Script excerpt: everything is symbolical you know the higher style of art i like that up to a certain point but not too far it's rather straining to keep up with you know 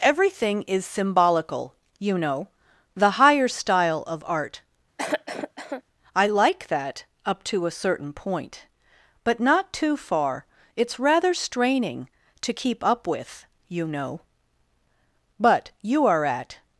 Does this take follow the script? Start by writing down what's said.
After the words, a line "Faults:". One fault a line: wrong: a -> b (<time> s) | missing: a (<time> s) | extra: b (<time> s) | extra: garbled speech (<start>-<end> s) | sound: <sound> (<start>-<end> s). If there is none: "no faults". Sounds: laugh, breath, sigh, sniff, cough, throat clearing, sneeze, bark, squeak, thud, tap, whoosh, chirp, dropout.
everything is symbolical you know the higher style of art i like that up to a certain point but not too far it's rather straining to keep up with you know but you are at
Faults:
sound: cough (5.0-5.8 s)
extra: but you are at (15.4 s)